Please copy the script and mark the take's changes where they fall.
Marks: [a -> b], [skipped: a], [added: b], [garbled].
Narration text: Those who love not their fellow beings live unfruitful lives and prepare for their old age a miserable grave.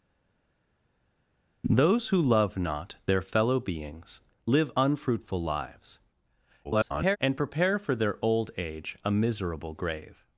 Those who love not their fellow beings live unfruitful lives [garbled] and prepare for their old age a miserable grave.